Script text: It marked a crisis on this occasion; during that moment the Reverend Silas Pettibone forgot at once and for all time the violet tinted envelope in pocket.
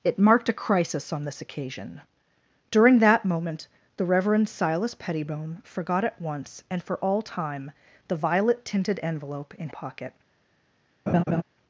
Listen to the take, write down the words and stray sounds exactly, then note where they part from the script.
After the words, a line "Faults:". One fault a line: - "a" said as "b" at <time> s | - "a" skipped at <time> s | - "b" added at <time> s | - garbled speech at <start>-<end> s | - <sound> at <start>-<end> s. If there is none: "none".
It marked a crisis on this occasion; during that moment the Reverend Silas Pettibone forgot at once and for all time the violet tinted envelope in pocket.
Faults:
- laugh at 11.1-11.4 s